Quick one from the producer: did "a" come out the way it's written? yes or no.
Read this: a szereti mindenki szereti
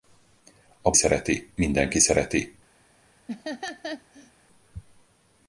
yes